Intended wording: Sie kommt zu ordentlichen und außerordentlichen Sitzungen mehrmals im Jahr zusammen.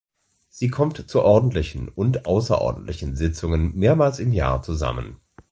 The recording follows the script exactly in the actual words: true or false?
true